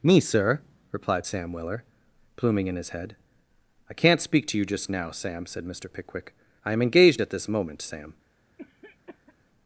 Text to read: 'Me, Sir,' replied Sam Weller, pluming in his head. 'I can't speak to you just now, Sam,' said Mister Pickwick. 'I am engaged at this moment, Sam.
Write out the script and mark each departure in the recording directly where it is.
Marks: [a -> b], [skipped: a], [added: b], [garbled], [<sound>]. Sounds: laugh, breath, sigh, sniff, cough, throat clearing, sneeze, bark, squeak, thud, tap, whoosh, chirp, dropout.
'Me, Sir,' replied Sam Weller, pluming in his head. 'I can't speak to you just now, Sam,' said Mister Pickwick. 'I am engaged at this moment, Sam. [cough]